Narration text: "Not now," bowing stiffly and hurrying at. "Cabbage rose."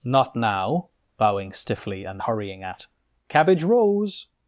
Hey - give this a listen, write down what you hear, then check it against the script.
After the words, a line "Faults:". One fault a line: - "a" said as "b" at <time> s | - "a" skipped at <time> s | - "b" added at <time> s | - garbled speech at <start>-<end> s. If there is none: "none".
"Not now," bowing stiffly and hurrying at. "Cabbage rose."
Faults:
none